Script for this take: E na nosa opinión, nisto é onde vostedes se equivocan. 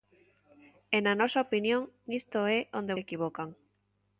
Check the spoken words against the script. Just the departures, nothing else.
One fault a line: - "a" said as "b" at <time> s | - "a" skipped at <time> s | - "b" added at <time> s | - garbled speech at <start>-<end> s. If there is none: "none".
- "vostedes" skipped at 3.0 s